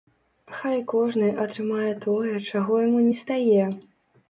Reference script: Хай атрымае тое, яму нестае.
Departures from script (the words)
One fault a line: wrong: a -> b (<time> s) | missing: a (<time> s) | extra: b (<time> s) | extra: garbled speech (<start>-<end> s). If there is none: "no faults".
extra: кожны (0.9 s)
extra: чаго (2.5 s)